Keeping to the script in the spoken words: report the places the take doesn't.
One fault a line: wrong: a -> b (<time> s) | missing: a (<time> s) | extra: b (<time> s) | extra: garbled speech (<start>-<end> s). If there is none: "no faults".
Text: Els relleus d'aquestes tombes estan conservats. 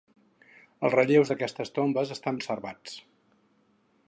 no faults